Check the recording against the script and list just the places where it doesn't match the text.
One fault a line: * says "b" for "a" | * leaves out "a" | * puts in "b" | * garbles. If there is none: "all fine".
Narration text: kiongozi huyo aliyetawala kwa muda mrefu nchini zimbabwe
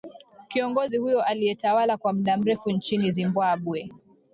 all fine